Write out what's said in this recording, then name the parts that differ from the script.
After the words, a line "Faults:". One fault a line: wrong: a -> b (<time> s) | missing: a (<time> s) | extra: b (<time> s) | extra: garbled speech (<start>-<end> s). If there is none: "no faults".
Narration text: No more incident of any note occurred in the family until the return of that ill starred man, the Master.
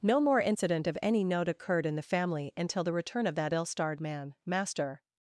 No more incident of any note occurred in the family until the return of that ill starred man, Master.
Faults:
missing: the (4.3 s)